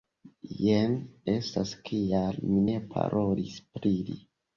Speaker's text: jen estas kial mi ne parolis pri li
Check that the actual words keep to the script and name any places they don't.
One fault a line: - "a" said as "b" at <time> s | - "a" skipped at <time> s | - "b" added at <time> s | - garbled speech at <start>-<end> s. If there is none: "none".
none